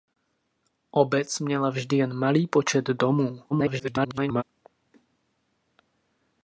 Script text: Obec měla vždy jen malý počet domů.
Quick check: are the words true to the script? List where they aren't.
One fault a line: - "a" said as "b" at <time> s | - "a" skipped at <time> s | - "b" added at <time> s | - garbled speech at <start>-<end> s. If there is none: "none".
- garbled speech at 3.5-4.4 s